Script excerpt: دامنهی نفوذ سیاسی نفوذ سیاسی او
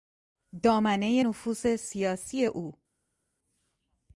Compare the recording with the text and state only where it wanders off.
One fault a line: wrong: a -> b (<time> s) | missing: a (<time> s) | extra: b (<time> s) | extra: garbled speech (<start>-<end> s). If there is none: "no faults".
missing: نفوذ سیاسی (2.4 s)